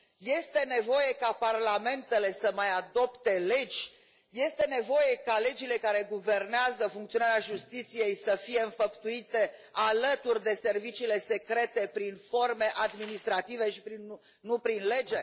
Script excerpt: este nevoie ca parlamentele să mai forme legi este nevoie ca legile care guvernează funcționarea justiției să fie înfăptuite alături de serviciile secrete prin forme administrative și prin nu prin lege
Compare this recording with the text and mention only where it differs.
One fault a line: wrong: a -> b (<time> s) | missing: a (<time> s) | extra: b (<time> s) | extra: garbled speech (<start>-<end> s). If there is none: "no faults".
wrong: forme -> adopte (2.7 s)